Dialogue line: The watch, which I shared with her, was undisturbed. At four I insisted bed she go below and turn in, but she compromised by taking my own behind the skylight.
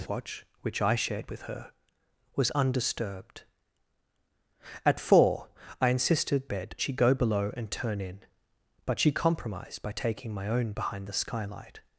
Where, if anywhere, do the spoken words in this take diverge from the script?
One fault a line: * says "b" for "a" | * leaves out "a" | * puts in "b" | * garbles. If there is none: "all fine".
all fine